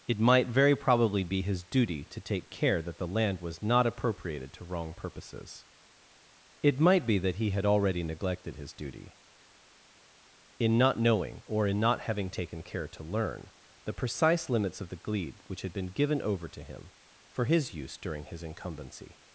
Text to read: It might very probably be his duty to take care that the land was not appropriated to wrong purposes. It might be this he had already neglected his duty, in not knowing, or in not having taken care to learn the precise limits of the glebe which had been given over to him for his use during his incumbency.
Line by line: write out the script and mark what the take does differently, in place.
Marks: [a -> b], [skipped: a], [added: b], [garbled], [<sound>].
It might very probably be his duty to take care that the land was not appropriated to wrong purposes. It might be [this -> that] he had already neglected his duty, in not knowing, or in not having taken care to learn the precise limits of the glebe which had been given over to him for his use during his incumbency.